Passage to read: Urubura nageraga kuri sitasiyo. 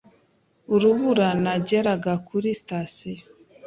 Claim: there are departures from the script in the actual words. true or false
false